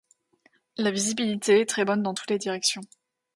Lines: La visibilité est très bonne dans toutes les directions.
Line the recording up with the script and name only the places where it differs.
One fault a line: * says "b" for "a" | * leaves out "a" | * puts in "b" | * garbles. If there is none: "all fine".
all fine